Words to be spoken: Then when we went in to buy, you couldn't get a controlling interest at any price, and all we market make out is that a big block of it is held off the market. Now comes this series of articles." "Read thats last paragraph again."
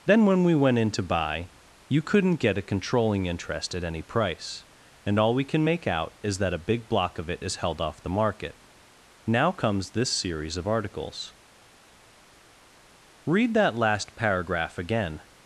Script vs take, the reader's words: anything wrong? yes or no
yes